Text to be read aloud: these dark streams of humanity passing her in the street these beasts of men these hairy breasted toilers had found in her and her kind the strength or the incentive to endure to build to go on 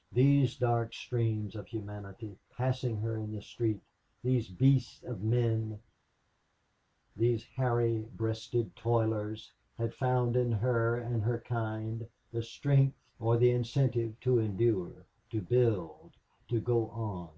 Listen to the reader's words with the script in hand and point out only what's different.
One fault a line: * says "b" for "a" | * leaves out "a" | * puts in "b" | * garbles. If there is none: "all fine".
all fine